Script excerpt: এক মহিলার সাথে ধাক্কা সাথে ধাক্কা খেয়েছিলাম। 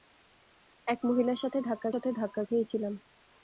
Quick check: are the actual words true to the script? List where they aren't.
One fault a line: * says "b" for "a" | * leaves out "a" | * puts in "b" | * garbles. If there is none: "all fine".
all fine